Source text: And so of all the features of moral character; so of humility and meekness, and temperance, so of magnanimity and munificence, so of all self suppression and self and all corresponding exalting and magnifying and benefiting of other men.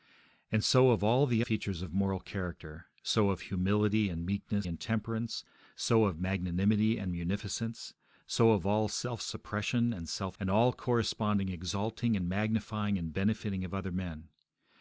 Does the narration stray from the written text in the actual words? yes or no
no